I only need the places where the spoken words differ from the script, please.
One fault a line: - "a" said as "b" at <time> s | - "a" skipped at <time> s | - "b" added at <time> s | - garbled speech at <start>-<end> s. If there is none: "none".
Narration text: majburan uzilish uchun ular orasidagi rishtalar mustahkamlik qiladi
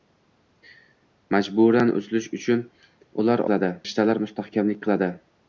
- "orasidagi" said as "qiladi" at 3.5 s